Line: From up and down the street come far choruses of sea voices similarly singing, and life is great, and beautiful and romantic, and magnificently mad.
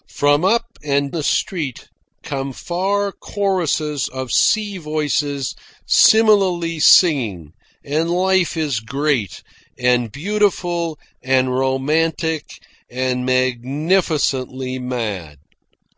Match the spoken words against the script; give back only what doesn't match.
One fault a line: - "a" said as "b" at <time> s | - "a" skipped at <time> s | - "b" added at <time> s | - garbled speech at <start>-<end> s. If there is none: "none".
- "down" skipped at 1.1 s